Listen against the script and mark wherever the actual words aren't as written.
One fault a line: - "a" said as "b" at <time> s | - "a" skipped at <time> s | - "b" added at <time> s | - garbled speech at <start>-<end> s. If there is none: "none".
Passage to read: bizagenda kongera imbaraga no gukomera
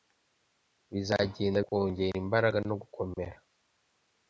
none